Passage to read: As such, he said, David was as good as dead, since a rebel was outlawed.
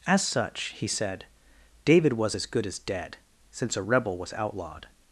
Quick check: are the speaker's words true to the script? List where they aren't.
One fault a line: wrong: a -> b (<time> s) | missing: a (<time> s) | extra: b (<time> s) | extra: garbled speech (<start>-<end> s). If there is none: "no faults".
no faults